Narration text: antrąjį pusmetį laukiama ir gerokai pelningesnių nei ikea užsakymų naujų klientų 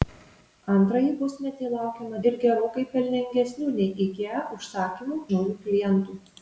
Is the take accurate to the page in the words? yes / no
yes